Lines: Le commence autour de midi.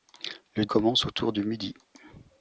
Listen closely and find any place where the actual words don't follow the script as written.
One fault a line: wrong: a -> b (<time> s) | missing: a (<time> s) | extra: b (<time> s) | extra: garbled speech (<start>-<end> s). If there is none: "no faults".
no faults